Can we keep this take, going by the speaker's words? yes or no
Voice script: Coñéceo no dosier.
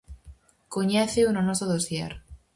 no